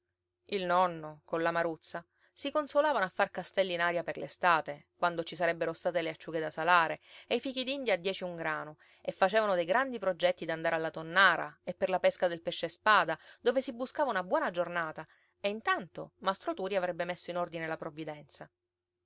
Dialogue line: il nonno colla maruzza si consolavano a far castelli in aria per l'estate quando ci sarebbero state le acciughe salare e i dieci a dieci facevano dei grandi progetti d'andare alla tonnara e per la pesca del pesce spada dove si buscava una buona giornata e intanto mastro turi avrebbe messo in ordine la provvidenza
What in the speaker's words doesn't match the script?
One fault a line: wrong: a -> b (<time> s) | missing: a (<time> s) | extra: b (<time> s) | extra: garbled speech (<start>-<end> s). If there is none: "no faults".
extra: da (6.4 s)
wrong: dieci -> fichidindia (7.4 s)
extra: un grano e (8.2 s)